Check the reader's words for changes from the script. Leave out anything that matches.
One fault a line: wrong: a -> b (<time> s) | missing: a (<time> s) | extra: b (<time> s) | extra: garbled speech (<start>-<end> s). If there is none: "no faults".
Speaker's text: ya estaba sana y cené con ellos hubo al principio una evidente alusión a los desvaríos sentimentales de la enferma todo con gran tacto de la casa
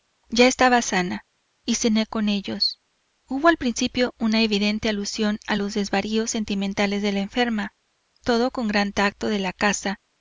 no faults